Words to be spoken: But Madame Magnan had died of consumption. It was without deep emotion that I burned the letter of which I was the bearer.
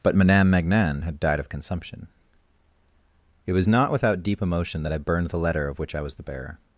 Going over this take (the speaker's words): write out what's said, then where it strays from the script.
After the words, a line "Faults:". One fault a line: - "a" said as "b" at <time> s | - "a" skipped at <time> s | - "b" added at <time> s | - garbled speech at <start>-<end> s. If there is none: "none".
But Madame Magnan had died of consumption. It was not without deep emotion that I burned the letter of which I was the bearer.
Faults:
- "not" added at 3.7 s